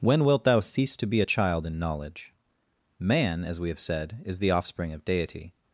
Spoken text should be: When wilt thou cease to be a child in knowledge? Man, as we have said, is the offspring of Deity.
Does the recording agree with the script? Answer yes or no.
yes